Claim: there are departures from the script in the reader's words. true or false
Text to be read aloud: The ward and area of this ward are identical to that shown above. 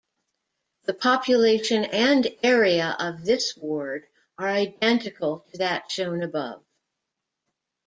true